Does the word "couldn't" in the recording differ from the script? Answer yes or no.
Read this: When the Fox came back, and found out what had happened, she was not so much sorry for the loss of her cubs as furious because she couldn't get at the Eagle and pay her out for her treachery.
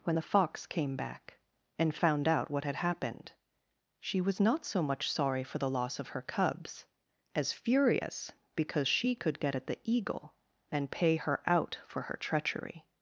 yes